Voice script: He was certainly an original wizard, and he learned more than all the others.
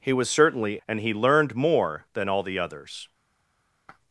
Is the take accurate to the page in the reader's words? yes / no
no